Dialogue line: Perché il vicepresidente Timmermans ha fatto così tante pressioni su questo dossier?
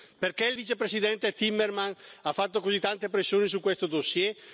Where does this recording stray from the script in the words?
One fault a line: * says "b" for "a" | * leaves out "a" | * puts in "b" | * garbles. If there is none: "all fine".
all fine